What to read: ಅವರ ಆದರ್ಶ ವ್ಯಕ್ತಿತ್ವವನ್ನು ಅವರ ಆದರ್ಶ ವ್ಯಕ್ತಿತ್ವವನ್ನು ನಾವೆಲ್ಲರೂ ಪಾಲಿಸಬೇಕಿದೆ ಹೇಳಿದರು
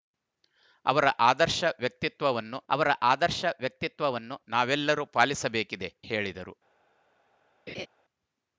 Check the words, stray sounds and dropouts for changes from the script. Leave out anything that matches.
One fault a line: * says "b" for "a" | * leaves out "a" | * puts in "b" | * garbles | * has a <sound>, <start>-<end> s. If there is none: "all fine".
* has a laugh, 7.7-7.9 s